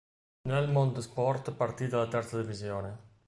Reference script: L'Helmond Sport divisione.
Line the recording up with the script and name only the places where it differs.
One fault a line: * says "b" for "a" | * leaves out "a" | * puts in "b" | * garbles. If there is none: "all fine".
* puts in "partì dalla terza"